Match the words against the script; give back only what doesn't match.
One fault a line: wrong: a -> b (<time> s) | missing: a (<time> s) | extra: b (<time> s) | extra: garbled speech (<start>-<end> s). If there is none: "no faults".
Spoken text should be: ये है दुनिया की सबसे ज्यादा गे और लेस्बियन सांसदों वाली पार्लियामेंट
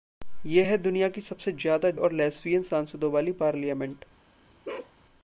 missing: गे (1.9 s)